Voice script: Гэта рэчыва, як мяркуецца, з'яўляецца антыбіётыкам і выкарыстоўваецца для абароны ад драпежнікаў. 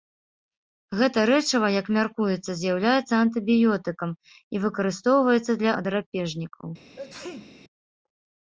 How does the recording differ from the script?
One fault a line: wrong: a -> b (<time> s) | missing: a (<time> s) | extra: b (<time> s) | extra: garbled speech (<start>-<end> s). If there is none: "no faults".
missing: абароны (5.7 s)